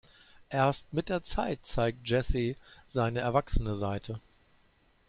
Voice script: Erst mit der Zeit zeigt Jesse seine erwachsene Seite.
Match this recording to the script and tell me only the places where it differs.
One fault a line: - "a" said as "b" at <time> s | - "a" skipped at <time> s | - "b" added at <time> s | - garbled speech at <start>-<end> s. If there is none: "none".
none